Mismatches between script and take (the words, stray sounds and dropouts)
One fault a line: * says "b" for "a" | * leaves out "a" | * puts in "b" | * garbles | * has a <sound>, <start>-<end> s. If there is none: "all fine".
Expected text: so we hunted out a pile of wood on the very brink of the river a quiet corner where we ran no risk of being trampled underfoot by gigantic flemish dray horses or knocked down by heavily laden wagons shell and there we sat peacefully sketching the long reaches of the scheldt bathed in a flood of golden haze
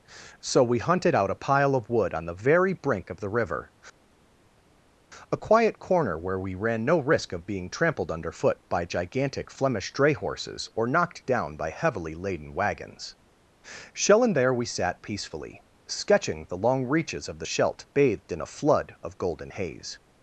all fine